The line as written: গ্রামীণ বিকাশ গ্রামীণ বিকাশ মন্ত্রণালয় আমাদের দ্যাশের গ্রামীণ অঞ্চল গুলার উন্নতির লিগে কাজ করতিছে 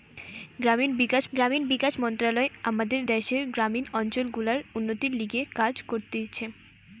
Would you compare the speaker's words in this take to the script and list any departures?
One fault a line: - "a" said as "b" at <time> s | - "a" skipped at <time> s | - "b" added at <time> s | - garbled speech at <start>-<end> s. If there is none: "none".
none